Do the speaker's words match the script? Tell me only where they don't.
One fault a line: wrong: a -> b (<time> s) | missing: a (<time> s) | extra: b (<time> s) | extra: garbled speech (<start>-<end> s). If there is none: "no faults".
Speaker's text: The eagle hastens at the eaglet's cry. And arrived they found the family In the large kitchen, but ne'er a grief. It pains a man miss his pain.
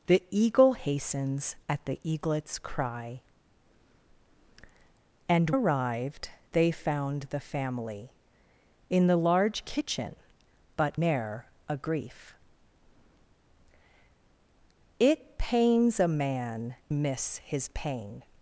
no faults